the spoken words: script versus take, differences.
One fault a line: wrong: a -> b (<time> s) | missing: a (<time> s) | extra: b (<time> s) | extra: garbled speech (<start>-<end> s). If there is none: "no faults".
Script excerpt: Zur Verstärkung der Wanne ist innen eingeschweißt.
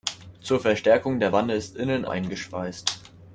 no faults